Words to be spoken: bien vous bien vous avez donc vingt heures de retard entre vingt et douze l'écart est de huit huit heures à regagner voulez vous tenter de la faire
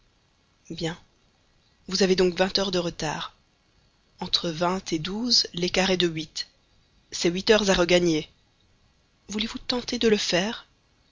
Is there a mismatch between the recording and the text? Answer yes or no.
yes